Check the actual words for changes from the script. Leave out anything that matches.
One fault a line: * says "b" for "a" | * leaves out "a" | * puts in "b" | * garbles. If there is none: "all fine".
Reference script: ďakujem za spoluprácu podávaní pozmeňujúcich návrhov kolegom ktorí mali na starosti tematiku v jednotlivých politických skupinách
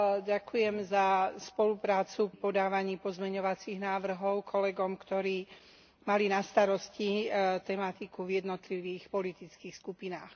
all fine